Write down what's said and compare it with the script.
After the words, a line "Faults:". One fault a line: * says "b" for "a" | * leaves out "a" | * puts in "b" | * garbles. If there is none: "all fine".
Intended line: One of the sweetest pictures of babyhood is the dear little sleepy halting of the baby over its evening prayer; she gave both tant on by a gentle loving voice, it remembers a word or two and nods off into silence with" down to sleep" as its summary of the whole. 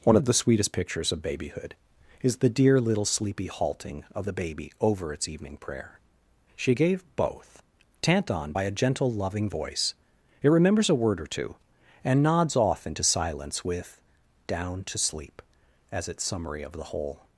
One of the sweetest pictures of babyhood is the dear little sleepy halting of the baby over its evening prayer; she gave both tant on by a gentle loving voice, it remembers a word or two and nods off into silence with" down to sleep" as its summary of the whole.
Faults:
all fine